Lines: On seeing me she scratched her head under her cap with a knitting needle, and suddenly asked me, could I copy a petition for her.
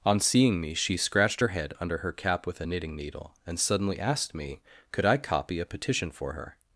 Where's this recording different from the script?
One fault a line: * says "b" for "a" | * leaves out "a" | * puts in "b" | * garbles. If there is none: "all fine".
all fine